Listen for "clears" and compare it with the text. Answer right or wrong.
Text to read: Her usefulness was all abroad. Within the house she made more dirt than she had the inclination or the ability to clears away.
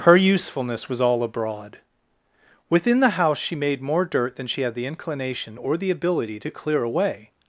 wrong